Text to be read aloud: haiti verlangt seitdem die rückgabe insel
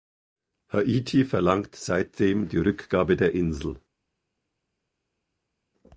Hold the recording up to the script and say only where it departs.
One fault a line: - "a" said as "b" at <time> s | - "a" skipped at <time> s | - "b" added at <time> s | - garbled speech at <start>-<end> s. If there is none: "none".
- "der" added at 3.2 s